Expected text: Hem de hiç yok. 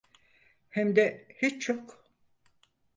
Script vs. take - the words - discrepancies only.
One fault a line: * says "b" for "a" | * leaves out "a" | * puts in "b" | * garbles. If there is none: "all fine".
all fine